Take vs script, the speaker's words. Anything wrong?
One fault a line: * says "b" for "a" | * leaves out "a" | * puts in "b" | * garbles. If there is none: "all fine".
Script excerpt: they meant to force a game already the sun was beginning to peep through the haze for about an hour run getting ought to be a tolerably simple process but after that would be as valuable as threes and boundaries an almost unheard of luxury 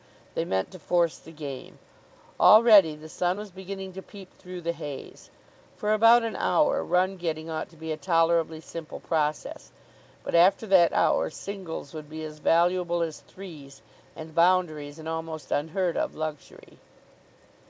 * says "the" for "a"
* puts in "hour singles"